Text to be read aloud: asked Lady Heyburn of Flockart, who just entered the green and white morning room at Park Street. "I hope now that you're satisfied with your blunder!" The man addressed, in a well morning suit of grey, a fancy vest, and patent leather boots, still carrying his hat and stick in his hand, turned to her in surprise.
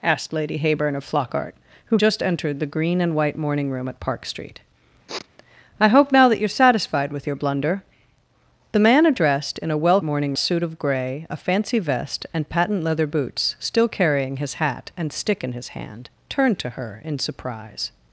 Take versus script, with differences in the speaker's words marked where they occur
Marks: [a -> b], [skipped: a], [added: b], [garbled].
asked Lady Heyburn of Flockart, who just entered the green and white morning room at Park Street. "I hope now that you're satisfied with your blunder!" The man addressed, in a well morning suit of grey, a fancy vest, and patent leather boots, still carrying his hat and stick in his hand, turned to her in surprise.